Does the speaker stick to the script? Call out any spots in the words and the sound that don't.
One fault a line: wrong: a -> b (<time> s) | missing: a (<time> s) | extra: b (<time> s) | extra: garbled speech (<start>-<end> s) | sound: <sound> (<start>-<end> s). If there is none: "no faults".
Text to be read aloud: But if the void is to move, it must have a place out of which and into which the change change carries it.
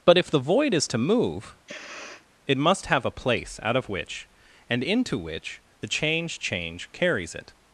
sound: sniff (1.7-2.3 s)